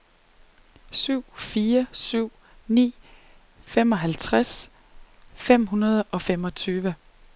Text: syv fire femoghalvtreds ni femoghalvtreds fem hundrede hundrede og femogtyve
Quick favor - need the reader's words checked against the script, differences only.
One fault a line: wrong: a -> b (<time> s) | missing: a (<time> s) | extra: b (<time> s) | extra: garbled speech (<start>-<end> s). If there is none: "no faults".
wrong: femoghalvtreds -> syv (1.9 s)
missing: hundrede (6.0 s)